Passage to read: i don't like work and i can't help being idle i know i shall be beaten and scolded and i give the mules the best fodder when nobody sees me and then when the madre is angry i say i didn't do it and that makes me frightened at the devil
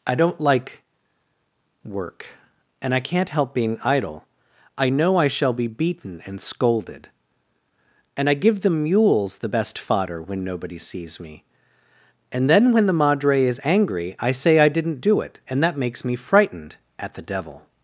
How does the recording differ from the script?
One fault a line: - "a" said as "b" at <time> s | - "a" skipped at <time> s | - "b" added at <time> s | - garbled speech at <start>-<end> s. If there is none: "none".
none